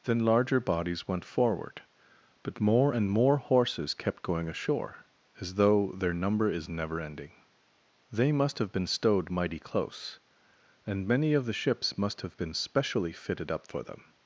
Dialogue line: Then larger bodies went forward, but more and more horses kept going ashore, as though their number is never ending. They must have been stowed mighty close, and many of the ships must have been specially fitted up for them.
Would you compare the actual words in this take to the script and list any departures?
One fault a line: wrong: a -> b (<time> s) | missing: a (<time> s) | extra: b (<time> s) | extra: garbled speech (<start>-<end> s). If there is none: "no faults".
no faults